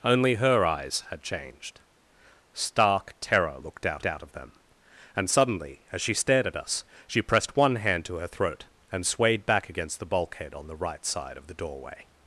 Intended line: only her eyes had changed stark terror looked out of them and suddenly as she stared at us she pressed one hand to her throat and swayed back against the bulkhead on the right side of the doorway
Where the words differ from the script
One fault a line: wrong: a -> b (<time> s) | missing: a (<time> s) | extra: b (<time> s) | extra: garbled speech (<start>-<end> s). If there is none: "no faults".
extra: out (4.0 s)